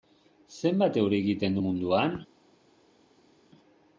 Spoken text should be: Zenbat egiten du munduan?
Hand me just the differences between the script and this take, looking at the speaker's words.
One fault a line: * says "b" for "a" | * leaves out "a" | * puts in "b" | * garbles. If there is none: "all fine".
* puts in "euri"